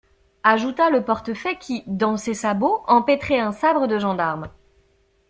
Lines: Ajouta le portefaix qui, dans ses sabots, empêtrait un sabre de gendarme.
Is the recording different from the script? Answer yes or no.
no